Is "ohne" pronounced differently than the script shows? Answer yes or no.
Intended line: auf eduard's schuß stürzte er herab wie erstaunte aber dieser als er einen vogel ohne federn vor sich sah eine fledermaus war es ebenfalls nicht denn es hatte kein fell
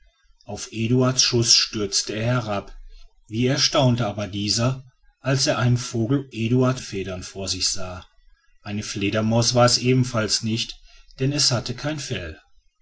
yes